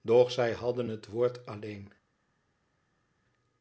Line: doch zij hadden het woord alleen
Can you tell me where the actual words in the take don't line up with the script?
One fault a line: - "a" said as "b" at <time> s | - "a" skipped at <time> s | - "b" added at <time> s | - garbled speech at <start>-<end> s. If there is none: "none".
none